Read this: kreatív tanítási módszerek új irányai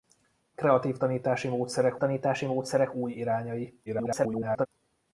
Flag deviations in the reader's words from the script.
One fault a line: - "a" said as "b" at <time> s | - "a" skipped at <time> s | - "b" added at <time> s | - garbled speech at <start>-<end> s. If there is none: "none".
- "tanítási módszerek" added at 2.0 s
- garbled speech at 3.9-4.7 s